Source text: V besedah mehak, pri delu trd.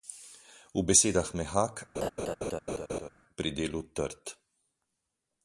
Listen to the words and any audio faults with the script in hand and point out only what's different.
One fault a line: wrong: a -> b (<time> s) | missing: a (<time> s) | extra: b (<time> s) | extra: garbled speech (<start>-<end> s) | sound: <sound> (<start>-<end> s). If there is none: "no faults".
sound: laugh (1.9-3.1 s)